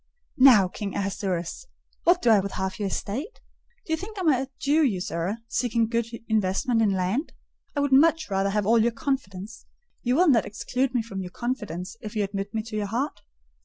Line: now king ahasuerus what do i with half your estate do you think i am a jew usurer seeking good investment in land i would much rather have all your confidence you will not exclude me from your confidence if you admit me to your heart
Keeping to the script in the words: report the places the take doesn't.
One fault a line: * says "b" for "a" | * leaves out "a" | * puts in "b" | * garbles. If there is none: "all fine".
all fine